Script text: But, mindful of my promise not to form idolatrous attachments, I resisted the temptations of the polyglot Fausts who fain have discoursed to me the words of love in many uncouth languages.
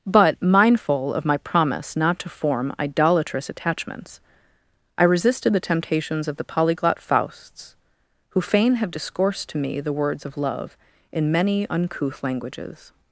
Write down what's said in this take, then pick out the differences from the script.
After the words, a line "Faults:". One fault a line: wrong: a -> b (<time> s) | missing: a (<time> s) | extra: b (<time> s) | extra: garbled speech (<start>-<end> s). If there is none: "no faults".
But, mindful of my promise not to form idolatrous attachments, I resisted the temptations of the polyglot Fausts who fain have discoursed to me the words of love in many uncouth languages.
Faults:
no faults